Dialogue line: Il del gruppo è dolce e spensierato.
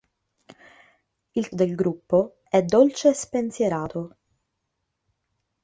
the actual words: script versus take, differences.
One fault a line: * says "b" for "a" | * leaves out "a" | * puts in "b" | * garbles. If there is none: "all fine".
all fine